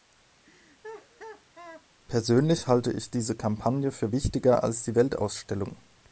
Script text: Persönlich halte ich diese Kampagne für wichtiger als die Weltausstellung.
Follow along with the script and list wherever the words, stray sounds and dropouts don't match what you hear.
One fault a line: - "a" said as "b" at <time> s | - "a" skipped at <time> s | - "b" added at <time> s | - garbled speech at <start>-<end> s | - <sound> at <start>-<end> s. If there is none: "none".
- laugh at 0.4-1.9 s